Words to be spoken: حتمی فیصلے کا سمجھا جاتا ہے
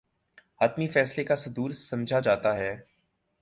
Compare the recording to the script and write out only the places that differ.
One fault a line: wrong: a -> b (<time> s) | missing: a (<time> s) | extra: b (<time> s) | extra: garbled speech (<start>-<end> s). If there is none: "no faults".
extra: صدور (1.4 s)